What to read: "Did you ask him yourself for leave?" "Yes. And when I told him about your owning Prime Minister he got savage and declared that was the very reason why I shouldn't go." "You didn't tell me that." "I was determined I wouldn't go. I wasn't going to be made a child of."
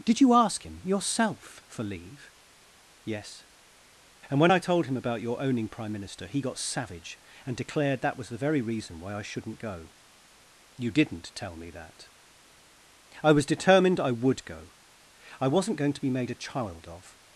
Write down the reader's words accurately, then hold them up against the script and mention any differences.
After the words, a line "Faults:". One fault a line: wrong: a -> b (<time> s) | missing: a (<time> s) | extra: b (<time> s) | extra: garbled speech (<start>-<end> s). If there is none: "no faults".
"Did you ask him yourself for leave?" "Yes. And when I told him about your owning Prime Minister he got savage and declared that was the very reason why I shouldn't go." "You didn't tell me that." "I was determined I would go. I wasn't going to be made a child of."
Faults:
wrong: wouldn't -> would (14.1 s)